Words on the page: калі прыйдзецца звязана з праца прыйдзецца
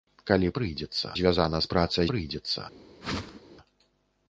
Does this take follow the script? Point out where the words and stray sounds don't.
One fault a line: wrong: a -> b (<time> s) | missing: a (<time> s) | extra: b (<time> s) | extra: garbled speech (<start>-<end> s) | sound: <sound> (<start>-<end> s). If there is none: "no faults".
sound: whoosh (3.0-3.4 s)